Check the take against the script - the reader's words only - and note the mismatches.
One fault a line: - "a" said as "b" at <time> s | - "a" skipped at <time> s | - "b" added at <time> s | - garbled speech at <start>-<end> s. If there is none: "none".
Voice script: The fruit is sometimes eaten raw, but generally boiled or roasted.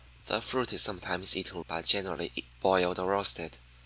- "raw" skipped at 1.6 s